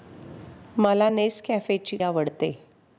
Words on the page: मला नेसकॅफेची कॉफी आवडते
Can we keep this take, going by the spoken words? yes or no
no